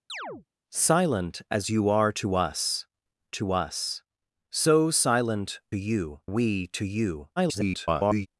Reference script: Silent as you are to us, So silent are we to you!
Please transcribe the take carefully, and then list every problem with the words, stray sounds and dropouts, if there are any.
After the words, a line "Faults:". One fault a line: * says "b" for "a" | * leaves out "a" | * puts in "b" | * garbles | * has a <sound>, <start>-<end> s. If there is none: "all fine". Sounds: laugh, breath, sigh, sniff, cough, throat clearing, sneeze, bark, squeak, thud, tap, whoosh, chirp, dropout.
Silent as you are to us to us, So silent you we to you! [garbled]
Faults:
* has a chirp, 0.1-0.5 s
* puts in "to us"
* says "you" for "are"
* garbles